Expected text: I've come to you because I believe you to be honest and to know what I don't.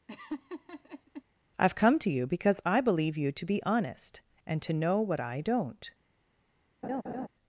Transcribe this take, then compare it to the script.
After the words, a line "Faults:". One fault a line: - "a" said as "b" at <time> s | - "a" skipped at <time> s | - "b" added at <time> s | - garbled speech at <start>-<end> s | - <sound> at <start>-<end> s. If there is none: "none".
I've come to you because I believe you to be honest and to know what I don't.
Faults:
- laugh at 0.1-1.2 s
- laugh at 6.8-7.3 s